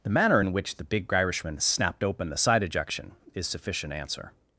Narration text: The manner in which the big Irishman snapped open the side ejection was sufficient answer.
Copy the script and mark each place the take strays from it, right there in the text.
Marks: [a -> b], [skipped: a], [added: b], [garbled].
The manner in which the big Irishman snapped open the side ejection [was -> is] sufficient answer.